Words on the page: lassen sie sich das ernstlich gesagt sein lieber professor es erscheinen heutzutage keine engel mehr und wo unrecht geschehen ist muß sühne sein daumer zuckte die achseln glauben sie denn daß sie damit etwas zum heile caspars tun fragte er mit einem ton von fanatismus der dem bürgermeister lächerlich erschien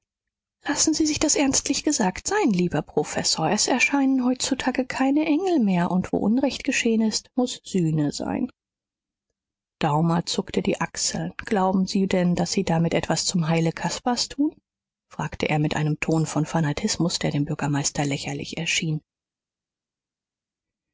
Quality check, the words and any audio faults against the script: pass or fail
pass